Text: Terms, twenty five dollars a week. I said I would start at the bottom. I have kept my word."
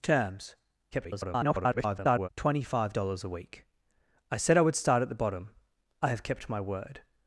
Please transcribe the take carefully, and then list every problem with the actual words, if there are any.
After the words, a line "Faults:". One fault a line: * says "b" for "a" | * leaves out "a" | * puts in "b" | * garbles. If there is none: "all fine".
Terms, [garbled] twenty five dollars a week. I said I would start at the bottom. I have kept my word."
Faults:
* garbles